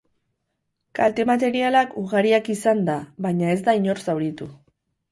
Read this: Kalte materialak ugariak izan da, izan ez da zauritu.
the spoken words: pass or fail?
fail